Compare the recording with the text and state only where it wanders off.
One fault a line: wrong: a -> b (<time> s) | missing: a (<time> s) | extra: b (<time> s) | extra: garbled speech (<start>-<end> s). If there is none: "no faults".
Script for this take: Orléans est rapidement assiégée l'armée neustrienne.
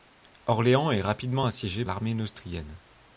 no faults